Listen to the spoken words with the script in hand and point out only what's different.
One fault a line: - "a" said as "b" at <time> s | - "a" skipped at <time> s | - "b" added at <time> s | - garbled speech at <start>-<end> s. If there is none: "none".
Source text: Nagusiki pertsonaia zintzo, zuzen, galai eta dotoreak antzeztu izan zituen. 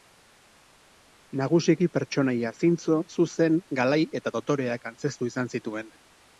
none